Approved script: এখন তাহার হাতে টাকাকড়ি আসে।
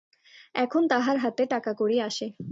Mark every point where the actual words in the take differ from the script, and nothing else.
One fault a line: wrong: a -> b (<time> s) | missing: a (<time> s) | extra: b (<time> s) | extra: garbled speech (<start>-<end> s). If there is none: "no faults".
no faults